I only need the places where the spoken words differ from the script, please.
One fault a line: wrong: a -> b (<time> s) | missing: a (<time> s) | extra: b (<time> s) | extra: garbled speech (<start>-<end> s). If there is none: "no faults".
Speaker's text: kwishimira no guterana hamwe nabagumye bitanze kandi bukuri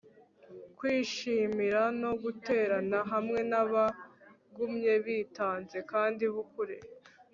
no faults